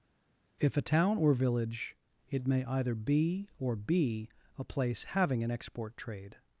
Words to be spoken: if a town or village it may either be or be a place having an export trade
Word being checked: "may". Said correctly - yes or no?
yes